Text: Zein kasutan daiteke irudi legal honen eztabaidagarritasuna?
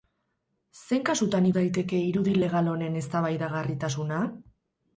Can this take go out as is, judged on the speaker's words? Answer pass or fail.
pass